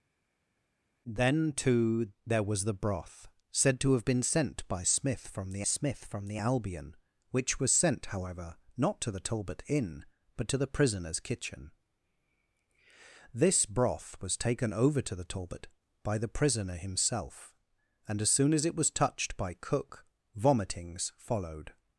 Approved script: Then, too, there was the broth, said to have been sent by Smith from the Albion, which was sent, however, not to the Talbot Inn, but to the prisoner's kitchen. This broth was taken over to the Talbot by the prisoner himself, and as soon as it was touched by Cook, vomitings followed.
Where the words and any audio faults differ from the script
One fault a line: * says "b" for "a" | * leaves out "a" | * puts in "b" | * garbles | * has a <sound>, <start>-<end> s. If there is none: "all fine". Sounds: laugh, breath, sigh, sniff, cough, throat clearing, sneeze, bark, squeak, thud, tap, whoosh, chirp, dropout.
* puts in "Smith from the"